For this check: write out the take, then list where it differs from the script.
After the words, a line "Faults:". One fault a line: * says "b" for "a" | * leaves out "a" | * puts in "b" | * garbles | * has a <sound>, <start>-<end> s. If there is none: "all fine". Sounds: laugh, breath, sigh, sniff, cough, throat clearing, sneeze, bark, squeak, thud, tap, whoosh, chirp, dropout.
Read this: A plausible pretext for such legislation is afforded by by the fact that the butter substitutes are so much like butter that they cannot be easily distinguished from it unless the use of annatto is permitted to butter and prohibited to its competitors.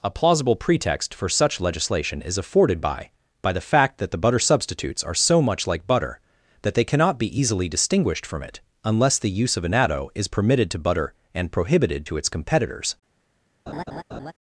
A plausible pretext for such legislation is afforded by by the fact that the butter substitutes are so much like butter that they cannot be easily distinguished from it unless the use of annatto is permitted to butter and prohibited to its competitors.
Faults:
* has a laugh, 13.7-14.3 s